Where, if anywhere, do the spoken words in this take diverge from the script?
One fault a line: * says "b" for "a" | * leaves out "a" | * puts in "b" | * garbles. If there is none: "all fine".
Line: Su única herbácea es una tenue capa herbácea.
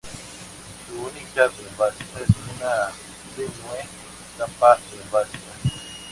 all fine